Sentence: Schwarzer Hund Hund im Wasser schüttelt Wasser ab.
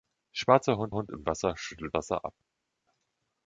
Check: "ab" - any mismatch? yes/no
no